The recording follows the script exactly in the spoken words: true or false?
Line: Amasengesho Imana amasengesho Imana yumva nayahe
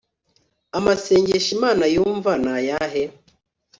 false